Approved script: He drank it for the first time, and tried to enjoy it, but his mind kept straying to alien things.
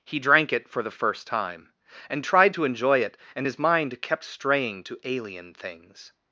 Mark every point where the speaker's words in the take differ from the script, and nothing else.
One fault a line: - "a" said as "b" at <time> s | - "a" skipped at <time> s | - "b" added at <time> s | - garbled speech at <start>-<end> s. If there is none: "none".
- "but" said as "and" at 3.4 s